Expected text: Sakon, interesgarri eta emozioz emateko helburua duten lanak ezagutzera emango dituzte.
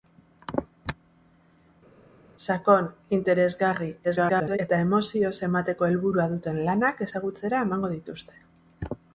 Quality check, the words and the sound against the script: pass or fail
fail